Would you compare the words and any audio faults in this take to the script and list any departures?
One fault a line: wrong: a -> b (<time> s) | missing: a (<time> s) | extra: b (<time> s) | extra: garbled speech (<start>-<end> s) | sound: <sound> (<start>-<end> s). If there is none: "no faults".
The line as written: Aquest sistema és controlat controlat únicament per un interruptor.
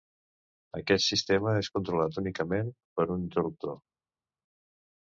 missing: controlat (2.2 s)